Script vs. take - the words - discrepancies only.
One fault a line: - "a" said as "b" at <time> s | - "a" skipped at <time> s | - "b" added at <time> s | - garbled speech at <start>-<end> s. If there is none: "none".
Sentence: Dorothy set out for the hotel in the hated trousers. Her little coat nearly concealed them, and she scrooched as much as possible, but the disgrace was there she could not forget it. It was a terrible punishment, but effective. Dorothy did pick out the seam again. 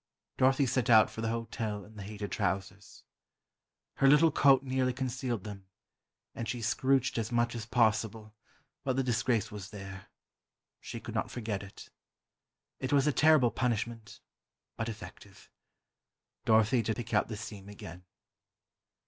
none